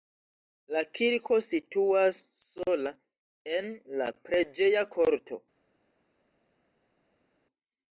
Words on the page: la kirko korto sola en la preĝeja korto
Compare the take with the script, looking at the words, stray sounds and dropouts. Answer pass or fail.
fail